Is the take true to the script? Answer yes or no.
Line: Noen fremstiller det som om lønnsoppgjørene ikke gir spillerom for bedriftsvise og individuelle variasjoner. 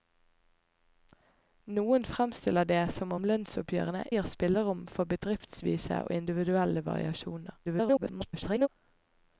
no